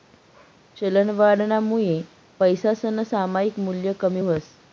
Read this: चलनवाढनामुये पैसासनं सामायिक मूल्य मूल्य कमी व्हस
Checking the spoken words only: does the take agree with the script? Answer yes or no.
no